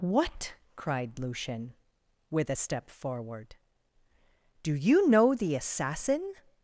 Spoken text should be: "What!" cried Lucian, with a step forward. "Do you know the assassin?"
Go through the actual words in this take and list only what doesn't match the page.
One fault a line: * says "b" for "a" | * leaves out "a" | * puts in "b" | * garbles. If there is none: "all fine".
all fine